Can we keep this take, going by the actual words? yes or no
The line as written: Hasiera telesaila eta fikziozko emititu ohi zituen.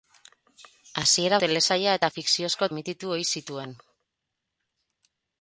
yes